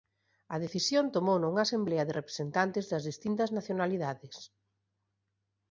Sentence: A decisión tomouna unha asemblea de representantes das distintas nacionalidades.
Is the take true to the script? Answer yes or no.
yes